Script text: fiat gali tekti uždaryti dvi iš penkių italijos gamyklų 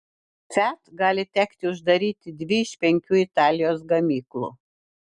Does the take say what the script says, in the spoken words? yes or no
yes